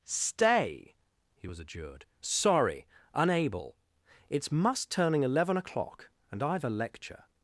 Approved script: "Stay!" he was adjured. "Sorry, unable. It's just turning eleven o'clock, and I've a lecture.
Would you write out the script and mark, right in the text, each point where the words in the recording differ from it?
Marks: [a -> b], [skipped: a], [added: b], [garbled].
"Stay!" he was adjured. "Sorry, unable. It's [just -> must] turning eleven o'clock, and I've a lecture.